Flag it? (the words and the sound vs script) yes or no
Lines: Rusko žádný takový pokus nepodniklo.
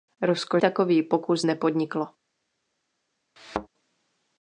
yes